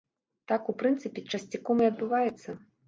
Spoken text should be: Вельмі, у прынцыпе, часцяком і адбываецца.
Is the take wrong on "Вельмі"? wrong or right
wrong